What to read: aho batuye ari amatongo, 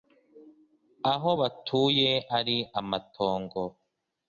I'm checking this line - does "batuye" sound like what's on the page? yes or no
yes